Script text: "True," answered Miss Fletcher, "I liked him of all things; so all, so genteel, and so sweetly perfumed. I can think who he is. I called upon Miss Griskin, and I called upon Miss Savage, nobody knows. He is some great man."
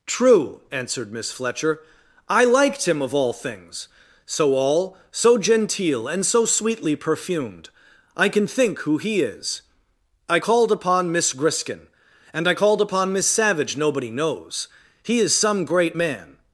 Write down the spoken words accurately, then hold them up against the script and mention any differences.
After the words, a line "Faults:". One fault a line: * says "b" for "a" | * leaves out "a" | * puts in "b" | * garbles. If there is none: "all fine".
"True," answered Miss Fletcher, "I liked him of all things; so all, so genteel, and so sweetly perfumed. I can think who he is. I called upon Miss Griskin, and I called upon Miss Savage, nobody knows. He is some great man."
Faults:
all fine